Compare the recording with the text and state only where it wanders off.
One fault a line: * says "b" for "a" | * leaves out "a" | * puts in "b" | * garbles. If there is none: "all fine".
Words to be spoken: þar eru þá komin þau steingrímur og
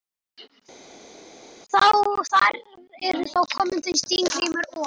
all fine